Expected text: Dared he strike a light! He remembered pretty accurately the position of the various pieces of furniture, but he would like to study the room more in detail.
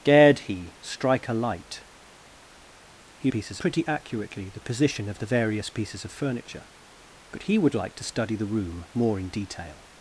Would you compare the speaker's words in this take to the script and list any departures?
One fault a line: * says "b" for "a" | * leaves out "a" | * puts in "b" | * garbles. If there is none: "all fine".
* says "pieces" for "remembered"